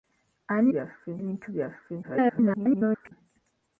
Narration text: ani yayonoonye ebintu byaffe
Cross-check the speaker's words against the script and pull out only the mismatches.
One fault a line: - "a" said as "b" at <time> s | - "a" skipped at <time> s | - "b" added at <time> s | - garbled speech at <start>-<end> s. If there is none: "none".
- "yayonoonye" said as "byaffe" at 0.7 s
- garbled speech at 2.0-3.1 s